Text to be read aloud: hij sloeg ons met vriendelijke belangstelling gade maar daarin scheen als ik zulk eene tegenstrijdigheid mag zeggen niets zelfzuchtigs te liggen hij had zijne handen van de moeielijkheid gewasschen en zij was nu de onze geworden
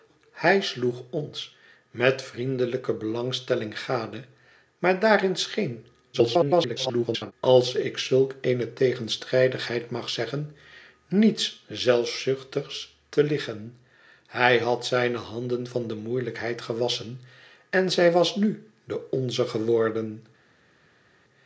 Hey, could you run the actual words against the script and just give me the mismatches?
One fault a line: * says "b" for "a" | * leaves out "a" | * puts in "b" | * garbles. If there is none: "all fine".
* garbles